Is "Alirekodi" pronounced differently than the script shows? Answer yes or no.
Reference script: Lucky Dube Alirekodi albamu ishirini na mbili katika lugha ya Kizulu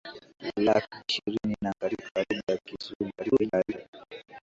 yes